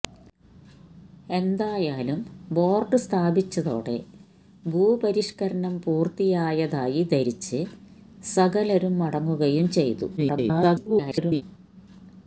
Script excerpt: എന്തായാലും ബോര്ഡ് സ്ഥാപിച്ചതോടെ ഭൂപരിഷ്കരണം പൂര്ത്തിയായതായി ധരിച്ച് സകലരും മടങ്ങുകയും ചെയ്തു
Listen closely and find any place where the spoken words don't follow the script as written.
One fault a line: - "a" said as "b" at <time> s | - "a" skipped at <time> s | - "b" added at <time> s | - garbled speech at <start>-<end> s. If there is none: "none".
- garbled speech at 10.2-11.4 s